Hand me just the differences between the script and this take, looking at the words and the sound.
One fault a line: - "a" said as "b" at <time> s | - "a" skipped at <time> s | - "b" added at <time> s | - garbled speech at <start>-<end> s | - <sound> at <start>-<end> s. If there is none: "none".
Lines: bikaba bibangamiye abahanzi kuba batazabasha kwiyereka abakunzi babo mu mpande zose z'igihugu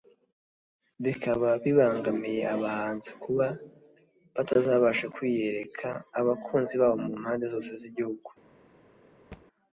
- thud at 9.3-9.5 s